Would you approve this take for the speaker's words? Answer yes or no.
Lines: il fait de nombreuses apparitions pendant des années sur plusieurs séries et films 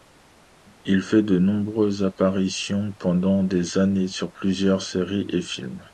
yes